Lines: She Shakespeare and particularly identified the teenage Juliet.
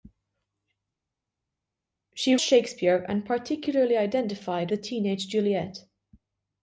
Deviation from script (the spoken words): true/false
false